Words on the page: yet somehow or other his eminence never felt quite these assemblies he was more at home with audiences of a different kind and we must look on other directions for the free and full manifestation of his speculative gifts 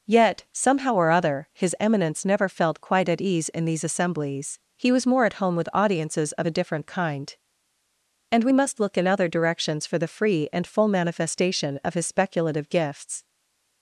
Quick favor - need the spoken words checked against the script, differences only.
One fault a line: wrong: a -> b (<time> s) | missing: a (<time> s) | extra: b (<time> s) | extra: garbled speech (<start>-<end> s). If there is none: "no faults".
extra: at ease in (3.1 s)
wrong: on -> in (8.9 s)